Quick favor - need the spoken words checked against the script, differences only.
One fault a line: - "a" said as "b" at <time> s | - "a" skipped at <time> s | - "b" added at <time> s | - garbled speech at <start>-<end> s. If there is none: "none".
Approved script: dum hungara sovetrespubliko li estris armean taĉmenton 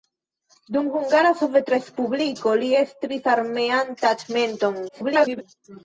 - garbled speech at 4.9-5.4 s